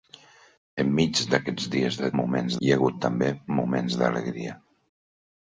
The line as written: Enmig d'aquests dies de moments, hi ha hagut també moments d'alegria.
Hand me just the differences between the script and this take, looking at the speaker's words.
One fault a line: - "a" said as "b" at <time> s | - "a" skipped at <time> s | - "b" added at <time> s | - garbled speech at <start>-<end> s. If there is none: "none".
none